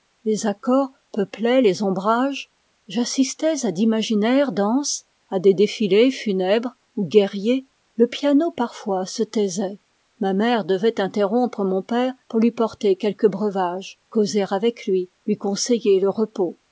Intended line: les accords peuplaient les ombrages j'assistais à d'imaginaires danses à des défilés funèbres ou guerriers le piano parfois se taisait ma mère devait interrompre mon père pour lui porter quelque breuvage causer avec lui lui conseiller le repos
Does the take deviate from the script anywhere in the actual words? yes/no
no